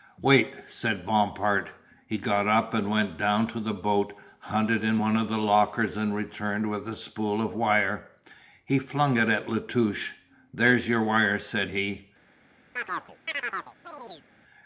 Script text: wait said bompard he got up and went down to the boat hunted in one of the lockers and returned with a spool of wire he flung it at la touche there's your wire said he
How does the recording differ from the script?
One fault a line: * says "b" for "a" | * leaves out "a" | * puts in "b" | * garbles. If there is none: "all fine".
all fine